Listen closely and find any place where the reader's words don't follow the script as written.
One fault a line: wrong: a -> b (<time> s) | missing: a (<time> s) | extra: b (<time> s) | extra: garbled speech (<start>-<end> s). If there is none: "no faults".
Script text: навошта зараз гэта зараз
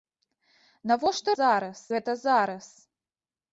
no faults